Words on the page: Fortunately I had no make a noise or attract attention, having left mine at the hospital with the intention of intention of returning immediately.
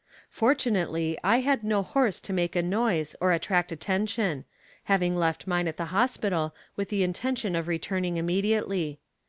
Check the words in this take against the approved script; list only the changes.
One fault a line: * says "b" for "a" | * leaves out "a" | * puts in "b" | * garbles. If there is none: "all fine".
* puts in "horse to"
* leaves out "intention of"